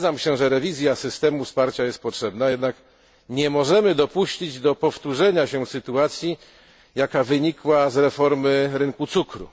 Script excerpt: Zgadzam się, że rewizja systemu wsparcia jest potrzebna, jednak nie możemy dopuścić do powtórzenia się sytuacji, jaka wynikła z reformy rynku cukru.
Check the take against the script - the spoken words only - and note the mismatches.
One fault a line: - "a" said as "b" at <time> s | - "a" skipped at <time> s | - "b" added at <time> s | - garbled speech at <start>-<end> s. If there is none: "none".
none